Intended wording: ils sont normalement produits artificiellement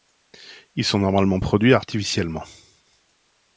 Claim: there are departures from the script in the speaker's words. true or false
false